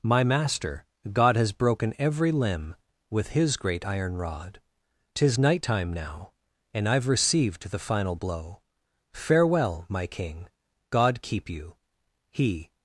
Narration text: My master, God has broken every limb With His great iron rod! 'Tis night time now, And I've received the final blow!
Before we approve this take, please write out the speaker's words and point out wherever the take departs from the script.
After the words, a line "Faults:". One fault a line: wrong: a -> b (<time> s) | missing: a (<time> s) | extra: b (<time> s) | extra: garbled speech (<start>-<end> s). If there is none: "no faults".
My master, God has broken every limb With His great iron rod! 'Tis night time now, And I've received the final blow! Farewell, My king! God keep you! He
Faults:
extra: Farewell My king God keep you He (9.1 s)